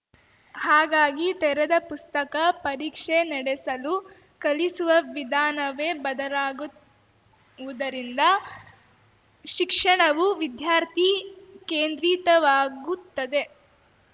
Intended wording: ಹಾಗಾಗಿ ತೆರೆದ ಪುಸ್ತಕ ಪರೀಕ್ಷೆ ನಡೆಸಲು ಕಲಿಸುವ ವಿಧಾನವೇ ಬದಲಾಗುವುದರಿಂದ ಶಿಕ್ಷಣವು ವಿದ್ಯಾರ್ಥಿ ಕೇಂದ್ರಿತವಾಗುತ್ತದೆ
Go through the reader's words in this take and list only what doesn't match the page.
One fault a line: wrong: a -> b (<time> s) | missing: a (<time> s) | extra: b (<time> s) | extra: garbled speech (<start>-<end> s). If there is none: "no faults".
no faults